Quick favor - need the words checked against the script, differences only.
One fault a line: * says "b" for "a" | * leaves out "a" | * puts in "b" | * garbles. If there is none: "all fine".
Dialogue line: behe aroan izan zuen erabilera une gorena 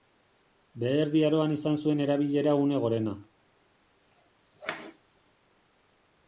* puts in "erdi"